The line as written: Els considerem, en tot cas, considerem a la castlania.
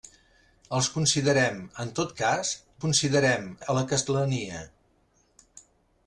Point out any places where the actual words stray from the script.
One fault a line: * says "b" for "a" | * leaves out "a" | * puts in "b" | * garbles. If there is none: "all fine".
all fine